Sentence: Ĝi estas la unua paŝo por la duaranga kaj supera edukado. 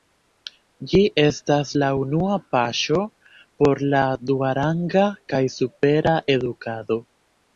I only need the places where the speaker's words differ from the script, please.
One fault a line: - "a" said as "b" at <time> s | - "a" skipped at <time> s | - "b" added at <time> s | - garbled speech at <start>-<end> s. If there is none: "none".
none